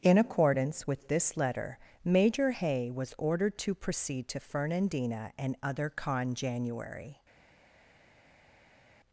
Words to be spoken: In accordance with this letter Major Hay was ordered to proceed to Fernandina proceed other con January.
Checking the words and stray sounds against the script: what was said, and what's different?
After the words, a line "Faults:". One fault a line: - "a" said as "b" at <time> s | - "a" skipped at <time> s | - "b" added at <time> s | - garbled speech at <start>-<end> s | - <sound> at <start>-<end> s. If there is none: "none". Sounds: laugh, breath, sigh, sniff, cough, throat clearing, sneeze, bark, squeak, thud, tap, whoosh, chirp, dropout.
In accordance with this letter Major Hay was ordered to proceed to Fernandina and other con January.
Faults:
- "proceed" said as "and" at 5.4 s